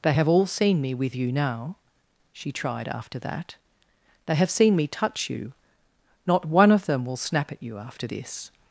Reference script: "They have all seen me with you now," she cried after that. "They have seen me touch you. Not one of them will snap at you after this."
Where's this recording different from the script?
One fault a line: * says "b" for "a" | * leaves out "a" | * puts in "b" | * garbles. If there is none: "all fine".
* says "tried" for "cried"